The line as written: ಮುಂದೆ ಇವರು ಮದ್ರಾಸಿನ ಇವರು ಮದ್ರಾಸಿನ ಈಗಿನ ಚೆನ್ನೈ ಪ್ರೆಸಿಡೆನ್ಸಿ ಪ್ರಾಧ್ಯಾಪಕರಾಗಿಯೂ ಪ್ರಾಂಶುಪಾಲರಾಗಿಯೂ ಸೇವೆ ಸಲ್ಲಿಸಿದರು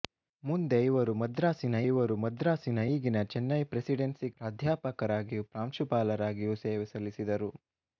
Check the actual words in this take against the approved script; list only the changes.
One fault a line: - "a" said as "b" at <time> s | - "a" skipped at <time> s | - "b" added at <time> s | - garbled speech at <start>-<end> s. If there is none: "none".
none